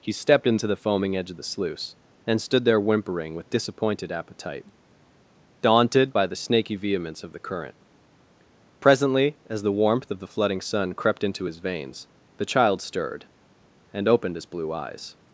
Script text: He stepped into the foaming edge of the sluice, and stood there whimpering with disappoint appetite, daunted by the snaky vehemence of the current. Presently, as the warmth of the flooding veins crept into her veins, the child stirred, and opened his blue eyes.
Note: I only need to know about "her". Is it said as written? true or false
false